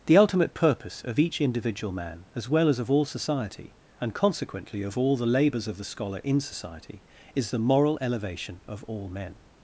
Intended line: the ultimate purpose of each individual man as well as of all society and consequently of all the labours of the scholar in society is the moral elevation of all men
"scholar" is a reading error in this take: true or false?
false